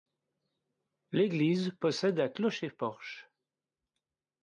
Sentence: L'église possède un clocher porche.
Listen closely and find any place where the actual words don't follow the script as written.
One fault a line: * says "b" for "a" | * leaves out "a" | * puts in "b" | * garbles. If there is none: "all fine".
all fine